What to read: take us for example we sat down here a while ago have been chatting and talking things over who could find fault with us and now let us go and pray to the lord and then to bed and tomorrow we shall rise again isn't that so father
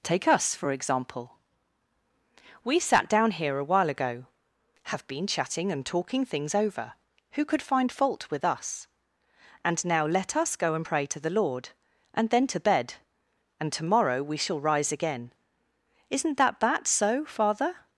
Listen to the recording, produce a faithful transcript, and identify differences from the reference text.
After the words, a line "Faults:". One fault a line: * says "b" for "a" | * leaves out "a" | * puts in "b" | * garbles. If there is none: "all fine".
take us for example we sat down here a while ago have been chatting and talking things over who could find fault with us and now let us go and pray to the lord and then to bed and tomorrow we shall rise again isn't that that so father
Faults:
* puts in "that"